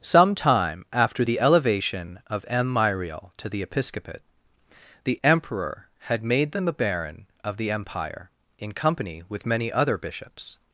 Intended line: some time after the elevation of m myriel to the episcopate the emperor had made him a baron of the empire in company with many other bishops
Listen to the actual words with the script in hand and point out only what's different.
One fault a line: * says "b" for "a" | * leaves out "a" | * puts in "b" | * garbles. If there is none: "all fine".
* says "them" for "him"